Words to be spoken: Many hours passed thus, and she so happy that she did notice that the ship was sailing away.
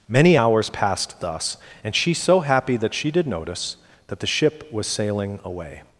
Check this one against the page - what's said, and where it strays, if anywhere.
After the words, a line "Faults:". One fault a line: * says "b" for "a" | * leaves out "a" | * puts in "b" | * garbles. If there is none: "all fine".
Many hours passed thus, and she so happy that she did notice that the ship was sailing away.
Faults:
all fine